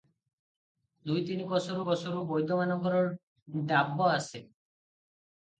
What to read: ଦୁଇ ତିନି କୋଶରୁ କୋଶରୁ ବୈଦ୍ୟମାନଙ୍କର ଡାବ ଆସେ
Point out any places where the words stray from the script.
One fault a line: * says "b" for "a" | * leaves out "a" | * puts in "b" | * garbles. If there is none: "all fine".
all fine